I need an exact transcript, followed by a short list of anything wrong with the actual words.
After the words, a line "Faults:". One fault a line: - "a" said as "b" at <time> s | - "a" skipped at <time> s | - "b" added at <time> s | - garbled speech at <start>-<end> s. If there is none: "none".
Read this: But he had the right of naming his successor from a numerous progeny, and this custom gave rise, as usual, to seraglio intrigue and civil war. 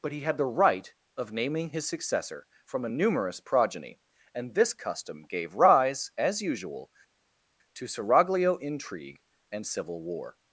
But he had the right of naming his successor from a numerous progeny, and this custom gave rise, as usual, to seraglio intrigue and civil war.
Faults:
none